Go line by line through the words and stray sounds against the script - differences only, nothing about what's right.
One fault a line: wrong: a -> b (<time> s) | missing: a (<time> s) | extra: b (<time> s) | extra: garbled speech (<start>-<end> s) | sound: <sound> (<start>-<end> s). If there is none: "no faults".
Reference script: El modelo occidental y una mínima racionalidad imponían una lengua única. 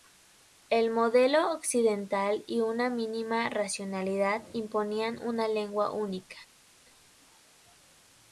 no faults